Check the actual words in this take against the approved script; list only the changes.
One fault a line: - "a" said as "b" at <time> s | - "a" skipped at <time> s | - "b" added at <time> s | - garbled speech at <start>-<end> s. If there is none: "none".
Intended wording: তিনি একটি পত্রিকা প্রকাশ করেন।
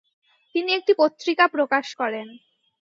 none